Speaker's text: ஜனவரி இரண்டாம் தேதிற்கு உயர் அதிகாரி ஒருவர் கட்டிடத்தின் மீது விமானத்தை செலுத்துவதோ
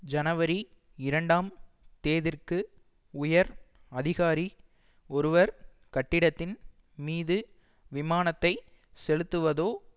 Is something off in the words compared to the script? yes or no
no